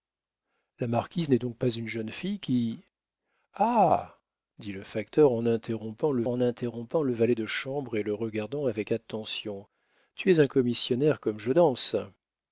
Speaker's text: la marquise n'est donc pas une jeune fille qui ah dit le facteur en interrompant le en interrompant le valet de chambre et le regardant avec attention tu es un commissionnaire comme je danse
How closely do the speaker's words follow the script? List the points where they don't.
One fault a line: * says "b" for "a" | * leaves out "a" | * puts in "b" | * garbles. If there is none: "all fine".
all fine